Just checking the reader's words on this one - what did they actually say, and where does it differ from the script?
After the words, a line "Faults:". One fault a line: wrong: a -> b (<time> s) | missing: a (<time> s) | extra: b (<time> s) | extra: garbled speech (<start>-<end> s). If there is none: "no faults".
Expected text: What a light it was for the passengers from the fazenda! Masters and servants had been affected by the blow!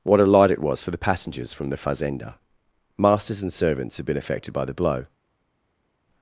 What a light it was for the passengers from the fazenda! Masters and servants had been affected by the blow!
Faults:
no faults